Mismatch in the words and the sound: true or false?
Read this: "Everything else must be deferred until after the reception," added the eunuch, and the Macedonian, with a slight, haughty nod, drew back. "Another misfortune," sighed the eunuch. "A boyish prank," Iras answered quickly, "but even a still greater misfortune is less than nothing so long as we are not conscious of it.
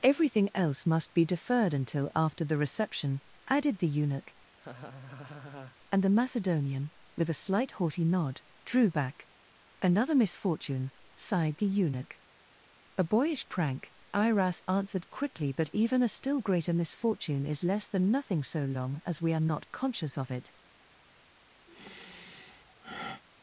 true